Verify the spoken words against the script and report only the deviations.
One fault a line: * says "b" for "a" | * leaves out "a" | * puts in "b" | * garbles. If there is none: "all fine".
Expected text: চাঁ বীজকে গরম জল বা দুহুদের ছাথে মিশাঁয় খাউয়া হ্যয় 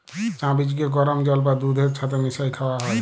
all fine